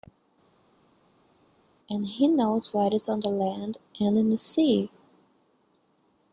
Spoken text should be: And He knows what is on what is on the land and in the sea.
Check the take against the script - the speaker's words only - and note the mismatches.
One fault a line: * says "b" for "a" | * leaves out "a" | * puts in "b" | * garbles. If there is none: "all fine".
* leaves out "what is on"